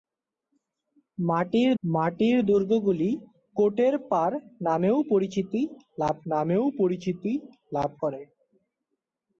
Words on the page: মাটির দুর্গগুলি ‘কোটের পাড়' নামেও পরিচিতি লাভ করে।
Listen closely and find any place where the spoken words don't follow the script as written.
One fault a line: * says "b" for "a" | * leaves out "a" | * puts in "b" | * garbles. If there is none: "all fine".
* puts in "মাটির"
* puts in "নামেও পরিচিতি লাভ"